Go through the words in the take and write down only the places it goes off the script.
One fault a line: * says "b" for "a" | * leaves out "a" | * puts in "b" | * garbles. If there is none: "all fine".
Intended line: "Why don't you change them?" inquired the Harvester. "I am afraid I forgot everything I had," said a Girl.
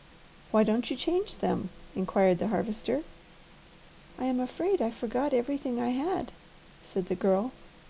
* says "the" for "a"